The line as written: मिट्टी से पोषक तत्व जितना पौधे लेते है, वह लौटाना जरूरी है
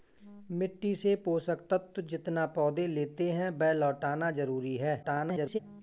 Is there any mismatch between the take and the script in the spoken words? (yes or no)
yes